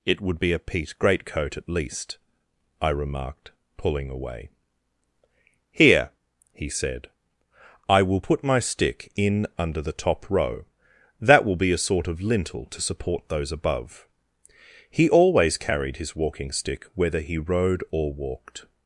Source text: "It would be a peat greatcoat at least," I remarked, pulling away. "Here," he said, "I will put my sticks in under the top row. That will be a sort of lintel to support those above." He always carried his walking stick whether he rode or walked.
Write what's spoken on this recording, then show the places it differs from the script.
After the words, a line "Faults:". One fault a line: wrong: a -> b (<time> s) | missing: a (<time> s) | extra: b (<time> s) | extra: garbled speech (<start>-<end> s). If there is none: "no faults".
"It would be a peat greatcoat at least," I remarked, pulling away. "Here," he said, "I will put my stick in under the top row. That will be a sort of lintel to support those above." He always carried his walking stick whether he rode or walked.
Faults:
wrong: sticks -> stick (8.6 s)